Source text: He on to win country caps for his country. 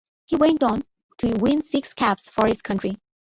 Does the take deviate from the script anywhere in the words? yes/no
yes